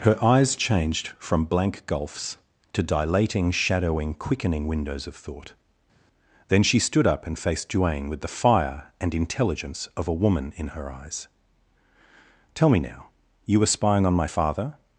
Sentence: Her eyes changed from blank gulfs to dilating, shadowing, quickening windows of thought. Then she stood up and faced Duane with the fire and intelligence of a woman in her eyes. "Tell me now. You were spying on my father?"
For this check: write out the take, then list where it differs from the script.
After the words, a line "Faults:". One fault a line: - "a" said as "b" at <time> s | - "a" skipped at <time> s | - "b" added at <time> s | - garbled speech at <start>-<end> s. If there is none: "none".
Her eyes changed from blank gulfs to dilating, shadowing, quickening windows of thought. Then she stood up and faced Duane with the fire and intelligence of a woman in her eyes. "Tell me now. You were spying on my father?"
Faults:
none